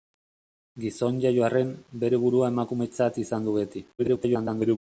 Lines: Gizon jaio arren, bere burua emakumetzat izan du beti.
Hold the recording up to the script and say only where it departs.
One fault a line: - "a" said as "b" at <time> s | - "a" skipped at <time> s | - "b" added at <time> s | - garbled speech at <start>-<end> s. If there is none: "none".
- garbled speech at 4.0-4.8 s